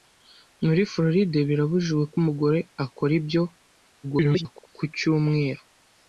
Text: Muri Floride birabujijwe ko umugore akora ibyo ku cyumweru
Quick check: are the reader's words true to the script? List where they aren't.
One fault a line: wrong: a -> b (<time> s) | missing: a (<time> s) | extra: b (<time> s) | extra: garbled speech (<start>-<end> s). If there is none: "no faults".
extra: garbled speech (4.0-4.7 s)